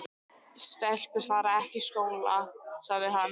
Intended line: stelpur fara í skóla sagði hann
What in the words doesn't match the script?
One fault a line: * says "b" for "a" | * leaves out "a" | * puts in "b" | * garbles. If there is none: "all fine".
* puts in "ekki"